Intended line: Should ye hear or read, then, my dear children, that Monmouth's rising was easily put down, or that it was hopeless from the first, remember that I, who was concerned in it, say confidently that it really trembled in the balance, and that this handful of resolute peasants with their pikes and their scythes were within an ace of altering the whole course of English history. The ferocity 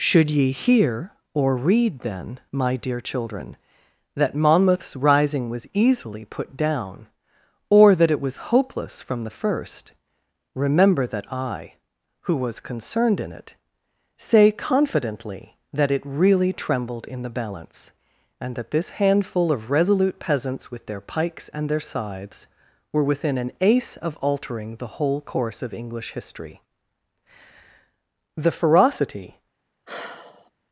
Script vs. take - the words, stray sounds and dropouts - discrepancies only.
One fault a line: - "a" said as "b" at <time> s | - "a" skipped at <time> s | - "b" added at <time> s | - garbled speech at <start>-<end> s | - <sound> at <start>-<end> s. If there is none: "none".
- sigh at 29.9-30.5 s